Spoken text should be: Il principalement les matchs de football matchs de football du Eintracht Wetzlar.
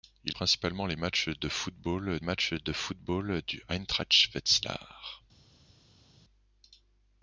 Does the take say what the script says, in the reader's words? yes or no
yes